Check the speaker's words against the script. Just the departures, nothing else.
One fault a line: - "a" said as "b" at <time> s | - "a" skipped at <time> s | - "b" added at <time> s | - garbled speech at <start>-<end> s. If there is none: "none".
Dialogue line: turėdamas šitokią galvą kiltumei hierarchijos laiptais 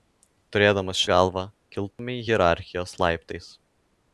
- "šitokią" skipped at 1.0 s